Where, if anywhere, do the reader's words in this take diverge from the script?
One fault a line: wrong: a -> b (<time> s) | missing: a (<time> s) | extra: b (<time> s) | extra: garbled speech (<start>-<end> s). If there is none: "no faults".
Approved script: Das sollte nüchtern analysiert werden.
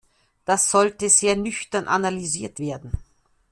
extra: sehr (1.1 s)